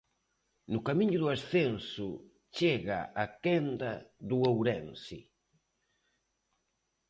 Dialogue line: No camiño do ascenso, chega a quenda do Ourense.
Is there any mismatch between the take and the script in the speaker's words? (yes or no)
no